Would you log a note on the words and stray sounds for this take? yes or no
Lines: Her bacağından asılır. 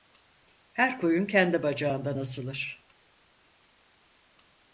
yes